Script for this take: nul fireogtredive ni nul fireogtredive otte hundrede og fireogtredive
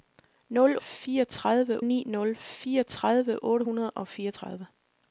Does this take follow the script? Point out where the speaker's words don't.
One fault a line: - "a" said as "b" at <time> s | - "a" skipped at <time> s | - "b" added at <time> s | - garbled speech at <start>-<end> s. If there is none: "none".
none